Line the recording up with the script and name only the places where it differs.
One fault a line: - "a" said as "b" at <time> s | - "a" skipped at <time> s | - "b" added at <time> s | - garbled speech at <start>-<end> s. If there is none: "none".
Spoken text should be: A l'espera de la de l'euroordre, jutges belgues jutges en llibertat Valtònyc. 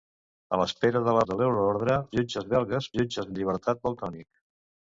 none